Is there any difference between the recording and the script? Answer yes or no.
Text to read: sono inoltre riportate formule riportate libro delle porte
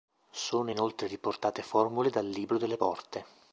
yes